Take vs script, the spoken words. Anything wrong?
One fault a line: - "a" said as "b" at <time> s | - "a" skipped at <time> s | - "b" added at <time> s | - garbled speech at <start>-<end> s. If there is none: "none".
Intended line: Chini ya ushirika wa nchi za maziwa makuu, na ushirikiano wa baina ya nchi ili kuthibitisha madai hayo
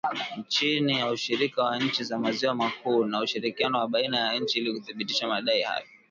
none